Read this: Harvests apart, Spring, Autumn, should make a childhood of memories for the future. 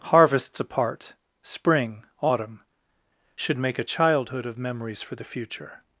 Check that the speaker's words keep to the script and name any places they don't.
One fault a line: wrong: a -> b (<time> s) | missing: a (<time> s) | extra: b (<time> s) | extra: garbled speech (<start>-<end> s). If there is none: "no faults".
no faults